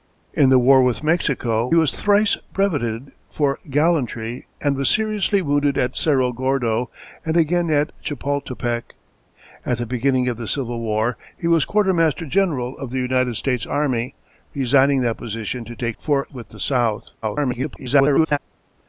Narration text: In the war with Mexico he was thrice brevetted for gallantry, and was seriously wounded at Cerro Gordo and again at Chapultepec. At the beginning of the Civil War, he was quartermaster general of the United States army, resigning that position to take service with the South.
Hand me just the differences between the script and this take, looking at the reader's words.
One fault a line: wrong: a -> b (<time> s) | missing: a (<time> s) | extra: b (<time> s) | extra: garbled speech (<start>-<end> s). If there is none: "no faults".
missing: he (1.7 s)
wrong: service -> for (16.0 s)
extra: garbled speech (17.2-18.4 s)